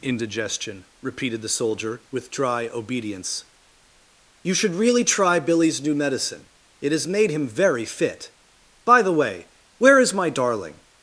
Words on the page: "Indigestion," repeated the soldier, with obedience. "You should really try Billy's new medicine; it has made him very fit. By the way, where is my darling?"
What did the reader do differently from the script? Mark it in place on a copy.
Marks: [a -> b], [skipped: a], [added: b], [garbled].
"Indigestion," repeated the soldier, with [added: dry] obedience. "You should really try Billy's new medicine; it has made him very fit. By the way, where is my darling?"